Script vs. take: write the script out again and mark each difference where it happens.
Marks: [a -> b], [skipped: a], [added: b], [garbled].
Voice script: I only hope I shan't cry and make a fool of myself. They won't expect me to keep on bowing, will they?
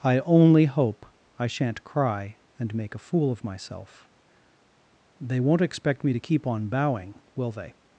I only hope I shan't cry and make a fool of myself. They won't expect me to keep on bowing, will they?